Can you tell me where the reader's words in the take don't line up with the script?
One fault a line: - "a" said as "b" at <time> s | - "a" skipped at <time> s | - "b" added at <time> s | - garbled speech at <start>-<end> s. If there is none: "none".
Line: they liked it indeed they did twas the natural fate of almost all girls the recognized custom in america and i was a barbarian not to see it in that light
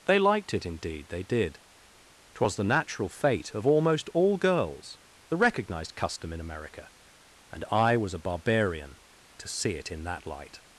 - "not" skipped at 9.0 s